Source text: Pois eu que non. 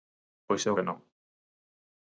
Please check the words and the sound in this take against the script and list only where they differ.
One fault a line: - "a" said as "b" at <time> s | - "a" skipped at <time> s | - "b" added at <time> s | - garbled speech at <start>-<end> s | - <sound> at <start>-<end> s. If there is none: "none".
none